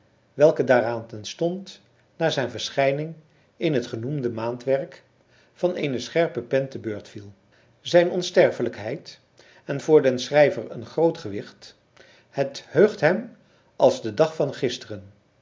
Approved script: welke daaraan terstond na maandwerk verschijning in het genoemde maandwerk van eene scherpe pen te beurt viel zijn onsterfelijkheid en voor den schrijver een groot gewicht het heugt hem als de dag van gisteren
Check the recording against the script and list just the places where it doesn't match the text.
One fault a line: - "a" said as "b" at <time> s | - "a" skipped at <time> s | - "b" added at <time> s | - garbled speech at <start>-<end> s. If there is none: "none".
- "maandwerk" said as "zijn" at 2.3 s